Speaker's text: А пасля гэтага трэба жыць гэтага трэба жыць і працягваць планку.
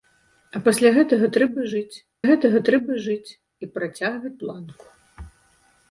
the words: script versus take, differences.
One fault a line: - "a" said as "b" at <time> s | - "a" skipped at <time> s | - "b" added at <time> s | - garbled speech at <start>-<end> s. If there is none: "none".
none